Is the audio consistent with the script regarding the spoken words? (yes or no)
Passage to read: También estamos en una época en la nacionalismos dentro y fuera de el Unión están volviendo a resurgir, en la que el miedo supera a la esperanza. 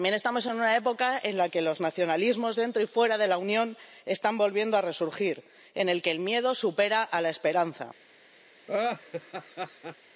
no